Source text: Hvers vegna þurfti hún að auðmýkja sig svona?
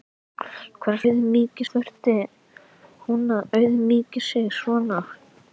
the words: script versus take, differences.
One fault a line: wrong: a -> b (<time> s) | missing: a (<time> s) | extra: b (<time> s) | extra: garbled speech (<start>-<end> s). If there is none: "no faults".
wrong: vegna -> auðmýkja (1.0 s)